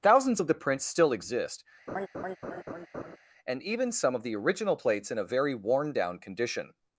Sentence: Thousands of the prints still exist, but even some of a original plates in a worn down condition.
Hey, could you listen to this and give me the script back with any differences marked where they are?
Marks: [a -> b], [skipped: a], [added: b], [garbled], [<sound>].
Thousands of the prints still exist, [laugh] [but -> and] even some of [a -> the] original plates in a [added: very] worn down condition.